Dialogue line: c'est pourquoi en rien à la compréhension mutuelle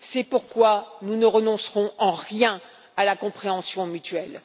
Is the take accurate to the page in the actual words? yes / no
no